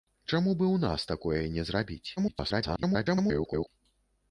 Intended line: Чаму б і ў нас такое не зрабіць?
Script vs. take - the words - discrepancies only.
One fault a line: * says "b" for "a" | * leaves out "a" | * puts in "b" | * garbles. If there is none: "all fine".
* garbles